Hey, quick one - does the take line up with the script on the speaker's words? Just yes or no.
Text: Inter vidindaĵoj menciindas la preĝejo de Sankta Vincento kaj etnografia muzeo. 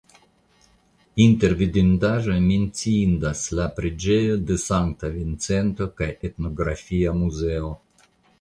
yes